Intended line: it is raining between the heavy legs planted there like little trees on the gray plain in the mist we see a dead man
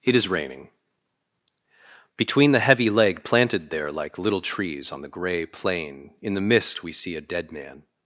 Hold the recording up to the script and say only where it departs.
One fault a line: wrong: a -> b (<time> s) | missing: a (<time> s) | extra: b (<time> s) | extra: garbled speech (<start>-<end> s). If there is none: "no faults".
wrong: legs -> leg (2.9 s)